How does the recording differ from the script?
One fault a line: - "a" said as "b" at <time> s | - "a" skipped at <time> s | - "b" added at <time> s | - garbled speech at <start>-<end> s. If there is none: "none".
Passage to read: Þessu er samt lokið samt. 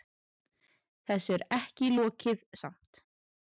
- "samt" said as "ekki" at 1.6 s